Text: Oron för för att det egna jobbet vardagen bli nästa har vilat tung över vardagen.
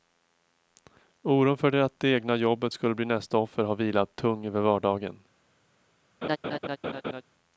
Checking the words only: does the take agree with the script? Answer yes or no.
no